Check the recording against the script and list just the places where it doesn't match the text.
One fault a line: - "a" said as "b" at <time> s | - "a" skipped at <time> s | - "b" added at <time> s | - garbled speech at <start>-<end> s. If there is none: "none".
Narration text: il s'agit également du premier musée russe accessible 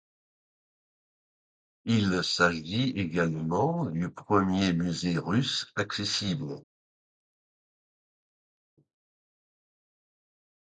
none